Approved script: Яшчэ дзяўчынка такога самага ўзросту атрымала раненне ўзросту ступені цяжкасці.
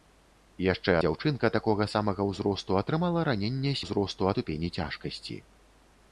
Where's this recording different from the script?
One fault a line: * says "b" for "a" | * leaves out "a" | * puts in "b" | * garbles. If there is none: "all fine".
all fine